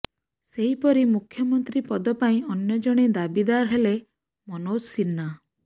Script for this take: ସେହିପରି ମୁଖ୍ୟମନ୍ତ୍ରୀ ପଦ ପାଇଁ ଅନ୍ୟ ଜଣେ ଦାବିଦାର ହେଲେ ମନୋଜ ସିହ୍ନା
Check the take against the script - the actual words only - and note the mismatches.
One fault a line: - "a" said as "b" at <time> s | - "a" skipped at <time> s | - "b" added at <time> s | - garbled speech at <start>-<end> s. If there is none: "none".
none